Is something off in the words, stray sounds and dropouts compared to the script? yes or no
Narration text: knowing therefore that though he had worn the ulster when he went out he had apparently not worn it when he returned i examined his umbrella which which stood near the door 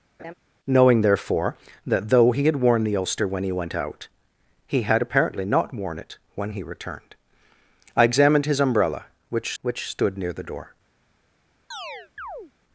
yes